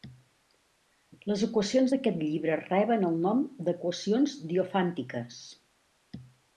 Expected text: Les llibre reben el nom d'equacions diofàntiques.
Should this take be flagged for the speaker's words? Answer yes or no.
yes